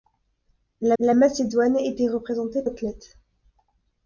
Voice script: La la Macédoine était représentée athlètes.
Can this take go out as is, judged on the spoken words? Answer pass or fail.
pass